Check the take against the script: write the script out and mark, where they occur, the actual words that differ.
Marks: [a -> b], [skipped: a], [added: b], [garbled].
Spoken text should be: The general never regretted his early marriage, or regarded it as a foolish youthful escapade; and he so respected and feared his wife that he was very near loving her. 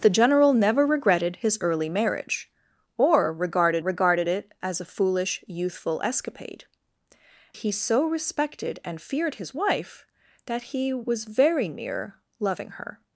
The general never regretted his early marriage, or regarded [added: regarded] it as a foolish youthful escapade; [skipped: and] he so respected and feared his wife that he was very near loving her.